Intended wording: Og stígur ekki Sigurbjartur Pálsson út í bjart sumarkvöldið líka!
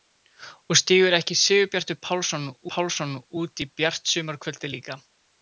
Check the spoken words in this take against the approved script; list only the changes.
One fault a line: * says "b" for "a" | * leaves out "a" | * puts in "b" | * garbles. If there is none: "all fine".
* puts in "Pálsson"